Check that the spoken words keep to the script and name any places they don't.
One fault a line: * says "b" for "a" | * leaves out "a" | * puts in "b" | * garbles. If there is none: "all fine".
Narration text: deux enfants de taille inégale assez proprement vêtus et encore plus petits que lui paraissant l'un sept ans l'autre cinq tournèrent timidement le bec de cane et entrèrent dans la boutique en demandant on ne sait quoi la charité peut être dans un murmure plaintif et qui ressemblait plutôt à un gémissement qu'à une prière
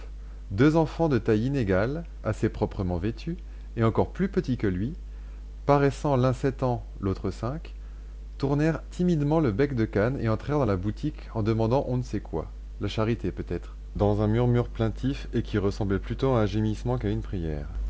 all fine